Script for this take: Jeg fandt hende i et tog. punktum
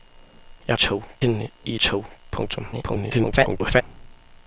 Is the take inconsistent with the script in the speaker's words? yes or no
yes